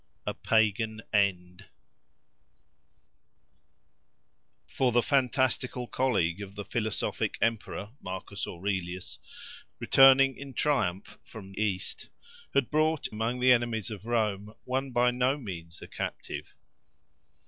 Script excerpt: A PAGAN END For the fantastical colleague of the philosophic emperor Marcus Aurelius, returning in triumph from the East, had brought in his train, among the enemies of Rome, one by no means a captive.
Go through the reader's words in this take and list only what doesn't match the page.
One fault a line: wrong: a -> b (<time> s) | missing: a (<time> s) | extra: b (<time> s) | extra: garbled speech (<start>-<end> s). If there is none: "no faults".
missing: the (11.5 s)
missing: in his train (13.1 s)